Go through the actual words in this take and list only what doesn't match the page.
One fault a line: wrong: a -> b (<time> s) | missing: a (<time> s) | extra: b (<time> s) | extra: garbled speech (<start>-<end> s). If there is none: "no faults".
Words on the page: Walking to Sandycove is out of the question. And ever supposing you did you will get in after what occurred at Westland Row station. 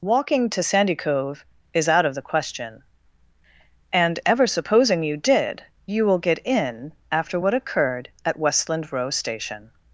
no faults